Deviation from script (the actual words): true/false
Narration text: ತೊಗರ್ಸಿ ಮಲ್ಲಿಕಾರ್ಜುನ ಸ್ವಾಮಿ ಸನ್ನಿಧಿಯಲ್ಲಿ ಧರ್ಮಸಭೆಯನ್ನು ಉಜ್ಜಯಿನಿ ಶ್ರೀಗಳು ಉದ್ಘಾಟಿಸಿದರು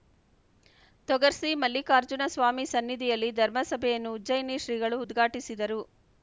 false